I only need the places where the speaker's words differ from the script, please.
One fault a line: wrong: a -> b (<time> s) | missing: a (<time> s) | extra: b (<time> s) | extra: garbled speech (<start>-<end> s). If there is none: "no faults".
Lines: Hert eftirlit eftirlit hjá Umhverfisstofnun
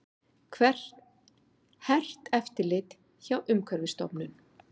missing: eftirlit (3.0 s)